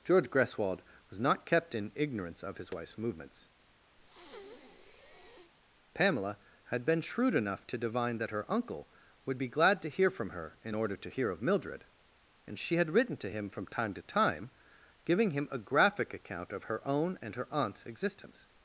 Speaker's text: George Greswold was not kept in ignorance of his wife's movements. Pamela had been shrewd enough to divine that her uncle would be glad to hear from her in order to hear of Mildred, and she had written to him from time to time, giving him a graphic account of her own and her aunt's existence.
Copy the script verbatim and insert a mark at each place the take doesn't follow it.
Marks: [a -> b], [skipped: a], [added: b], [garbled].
George Greswold was not kept in ignorance of his wife's movements. Pamela had been shrewd enough to divine that her uncle would be glad to hear from her in order to hear of Mildred, and she had written to him from time to time, giving him a graphic account of her own and her aunt's existence.